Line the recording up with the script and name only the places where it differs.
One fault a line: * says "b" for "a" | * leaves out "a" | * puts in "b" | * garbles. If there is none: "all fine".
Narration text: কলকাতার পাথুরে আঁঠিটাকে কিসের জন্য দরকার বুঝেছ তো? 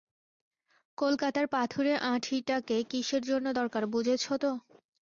all fine